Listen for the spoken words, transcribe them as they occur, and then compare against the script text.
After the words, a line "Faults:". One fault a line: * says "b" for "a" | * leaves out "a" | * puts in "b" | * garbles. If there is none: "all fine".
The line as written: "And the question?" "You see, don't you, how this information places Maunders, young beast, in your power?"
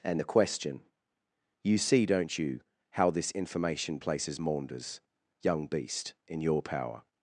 "And the question?" "You see, don't you, how this information places Maunders, young beast, in your power?"
Faults:
all fine